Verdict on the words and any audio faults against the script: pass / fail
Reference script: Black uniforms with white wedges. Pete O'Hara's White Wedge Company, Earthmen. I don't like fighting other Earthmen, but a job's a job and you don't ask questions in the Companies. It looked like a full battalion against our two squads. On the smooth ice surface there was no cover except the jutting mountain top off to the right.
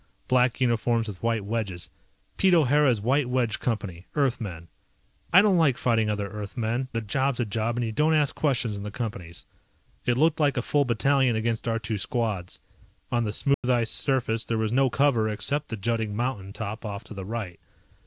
fail